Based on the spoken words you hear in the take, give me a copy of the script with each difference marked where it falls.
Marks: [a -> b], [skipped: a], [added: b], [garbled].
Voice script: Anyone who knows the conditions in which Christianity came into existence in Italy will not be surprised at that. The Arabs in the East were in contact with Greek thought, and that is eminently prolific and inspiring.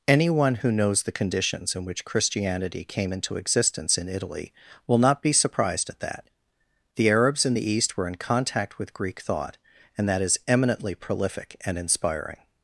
Anyone who knows the conditions in which Christianity came into existence in Italy will not be surprised at that. The Arabs in the East were in contact with Greek thought, and that is eminently prolific and inspiring.